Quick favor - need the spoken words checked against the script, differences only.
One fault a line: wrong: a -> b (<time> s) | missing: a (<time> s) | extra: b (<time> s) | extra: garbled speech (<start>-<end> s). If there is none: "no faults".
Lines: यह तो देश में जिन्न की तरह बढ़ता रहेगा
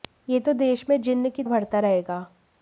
missing: तरह (1.4 s)